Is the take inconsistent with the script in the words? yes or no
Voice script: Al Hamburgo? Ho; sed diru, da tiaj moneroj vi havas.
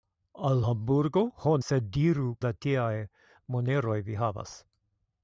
no